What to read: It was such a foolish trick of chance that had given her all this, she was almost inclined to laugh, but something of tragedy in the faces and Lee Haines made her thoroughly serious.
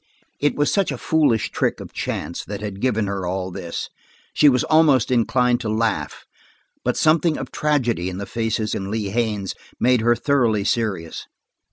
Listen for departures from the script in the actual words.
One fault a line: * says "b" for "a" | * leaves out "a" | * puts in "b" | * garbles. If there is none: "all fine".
all fine